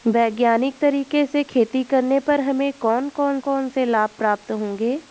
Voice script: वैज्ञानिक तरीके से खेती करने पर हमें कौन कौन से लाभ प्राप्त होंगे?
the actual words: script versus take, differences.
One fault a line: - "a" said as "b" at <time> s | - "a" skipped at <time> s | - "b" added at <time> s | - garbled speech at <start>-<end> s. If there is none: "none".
- "कौन" added at 3.4 s